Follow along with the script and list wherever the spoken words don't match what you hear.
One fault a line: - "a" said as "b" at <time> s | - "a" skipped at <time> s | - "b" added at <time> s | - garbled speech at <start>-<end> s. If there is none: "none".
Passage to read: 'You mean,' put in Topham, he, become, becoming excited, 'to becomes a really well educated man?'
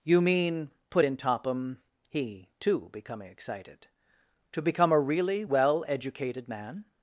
- "become" said as "too" at 2.6 s
- "becomes" said as "become" at 4.6 s